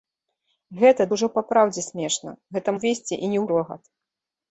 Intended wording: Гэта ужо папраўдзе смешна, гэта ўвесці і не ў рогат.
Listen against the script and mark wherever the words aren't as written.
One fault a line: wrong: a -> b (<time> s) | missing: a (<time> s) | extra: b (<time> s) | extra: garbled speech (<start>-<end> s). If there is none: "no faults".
no faults